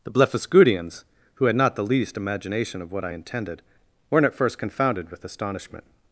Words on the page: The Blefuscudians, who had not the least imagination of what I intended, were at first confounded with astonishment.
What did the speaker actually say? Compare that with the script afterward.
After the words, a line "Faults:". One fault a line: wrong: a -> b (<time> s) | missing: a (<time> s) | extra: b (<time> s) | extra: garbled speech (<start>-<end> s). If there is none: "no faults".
The Blefuscudians, who had not the least imagination of what I intended, weren't at first confounded with astonishment.
Faults:
wrong: were -> weren't (4.1 s)